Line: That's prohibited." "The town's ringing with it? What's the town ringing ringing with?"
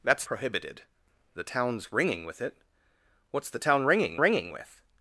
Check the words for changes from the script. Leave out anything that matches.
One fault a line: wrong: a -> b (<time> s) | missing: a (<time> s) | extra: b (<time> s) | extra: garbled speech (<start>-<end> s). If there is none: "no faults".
no faults